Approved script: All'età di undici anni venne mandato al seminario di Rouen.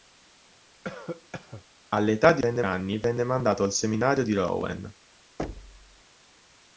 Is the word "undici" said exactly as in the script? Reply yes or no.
no